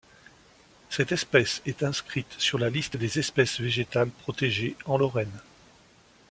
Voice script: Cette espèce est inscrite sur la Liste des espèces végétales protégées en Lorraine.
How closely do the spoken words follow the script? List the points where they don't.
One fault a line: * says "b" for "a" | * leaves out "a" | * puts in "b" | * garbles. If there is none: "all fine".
all fine